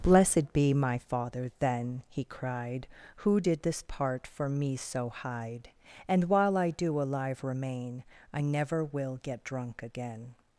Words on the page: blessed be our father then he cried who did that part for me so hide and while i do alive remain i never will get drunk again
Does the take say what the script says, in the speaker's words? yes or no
no